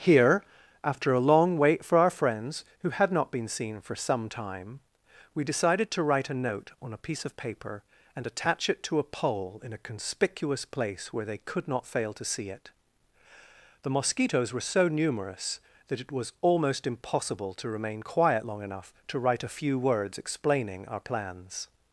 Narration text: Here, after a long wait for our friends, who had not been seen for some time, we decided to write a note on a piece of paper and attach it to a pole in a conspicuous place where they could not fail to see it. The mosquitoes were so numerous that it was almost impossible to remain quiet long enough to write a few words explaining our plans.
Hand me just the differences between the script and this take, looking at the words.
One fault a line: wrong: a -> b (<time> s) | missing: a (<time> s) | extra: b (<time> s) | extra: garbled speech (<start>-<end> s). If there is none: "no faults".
no faults